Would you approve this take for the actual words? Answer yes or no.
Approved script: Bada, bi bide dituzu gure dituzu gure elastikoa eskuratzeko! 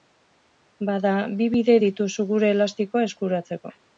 no